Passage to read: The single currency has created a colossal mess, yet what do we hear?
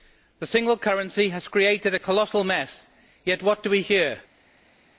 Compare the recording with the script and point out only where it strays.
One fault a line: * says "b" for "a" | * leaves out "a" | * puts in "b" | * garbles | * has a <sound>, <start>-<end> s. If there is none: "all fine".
all fine